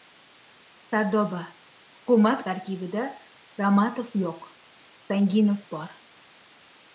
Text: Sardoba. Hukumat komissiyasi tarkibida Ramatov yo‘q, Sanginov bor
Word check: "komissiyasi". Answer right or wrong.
wrong